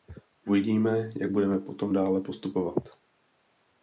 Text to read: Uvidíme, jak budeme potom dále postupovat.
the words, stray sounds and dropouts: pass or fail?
pass